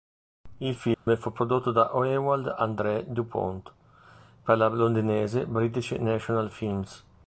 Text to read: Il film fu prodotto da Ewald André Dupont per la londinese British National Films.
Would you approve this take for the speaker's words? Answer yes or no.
yes